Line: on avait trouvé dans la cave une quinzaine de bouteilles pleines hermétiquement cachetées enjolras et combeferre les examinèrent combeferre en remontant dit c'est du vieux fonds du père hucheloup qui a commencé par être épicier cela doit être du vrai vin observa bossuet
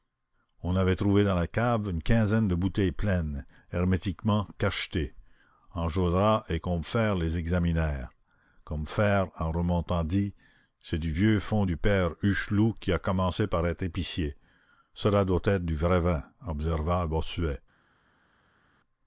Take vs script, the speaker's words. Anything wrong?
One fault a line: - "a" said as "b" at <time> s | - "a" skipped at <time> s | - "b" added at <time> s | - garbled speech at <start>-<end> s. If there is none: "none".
none